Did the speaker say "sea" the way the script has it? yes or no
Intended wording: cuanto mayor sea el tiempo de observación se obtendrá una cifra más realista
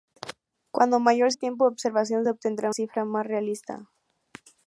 no